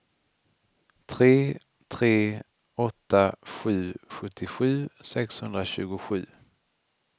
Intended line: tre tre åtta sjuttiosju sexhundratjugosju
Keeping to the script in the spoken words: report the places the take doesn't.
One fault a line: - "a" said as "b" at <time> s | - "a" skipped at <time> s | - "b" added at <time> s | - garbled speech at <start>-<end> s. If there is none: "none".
- "sju" added at 3.6 s